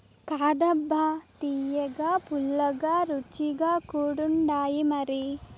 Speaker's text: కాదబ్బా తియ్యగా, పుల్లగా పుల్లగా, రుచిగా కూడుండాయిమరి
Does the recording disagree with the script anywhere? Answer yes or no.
yes